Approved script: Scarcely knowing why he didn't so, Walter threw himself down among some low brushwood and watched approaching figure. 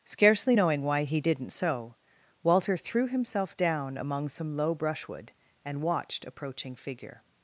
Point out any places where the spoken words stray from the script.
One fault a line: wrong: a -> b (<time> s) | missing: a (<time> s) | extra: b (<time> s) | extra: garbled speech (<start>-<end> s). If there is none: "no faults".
no faults